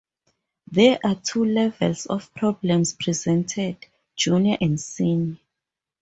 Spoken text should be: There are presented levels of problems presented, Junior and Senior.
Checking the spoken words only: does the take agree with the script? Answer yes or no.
no